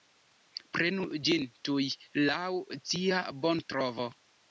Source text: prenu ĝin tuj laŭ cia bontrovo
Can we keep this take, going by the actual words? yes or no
yes